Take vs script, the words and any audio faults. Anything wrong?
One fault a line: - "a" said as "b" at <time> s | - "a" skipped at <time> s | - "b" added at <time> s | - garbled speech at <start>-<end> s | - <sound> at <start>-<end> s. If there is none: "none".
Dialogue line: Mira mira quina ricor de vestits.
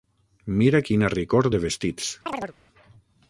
- "mira" skipped at 0.8 s
- chirp at 2.3-2.5 s